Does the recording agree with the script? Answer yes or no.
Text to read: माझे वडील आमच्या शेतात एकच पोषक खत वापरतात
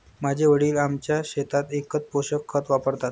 yes